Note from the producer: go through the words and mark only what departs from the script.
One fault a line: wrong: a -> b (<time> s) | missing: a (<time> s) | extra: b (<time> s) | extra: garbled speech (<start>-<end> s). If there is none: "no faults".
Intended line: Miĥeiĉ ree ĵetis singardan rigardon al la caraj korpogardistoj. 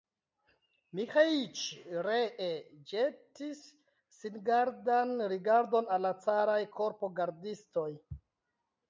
no faults